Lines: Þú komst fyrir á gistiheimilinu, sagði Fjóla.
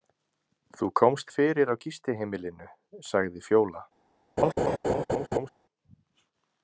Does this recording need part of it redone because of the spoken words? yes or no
no